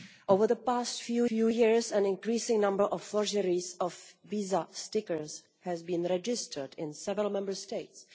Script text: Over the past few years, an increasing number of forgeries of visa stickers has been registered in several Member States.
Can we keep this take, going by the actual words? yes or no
no